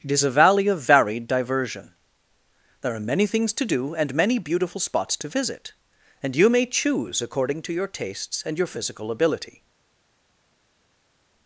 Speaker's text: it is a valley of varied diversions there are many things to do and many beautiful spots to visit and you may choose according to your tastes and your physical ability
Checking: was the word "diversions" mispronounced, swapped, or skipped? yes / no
yes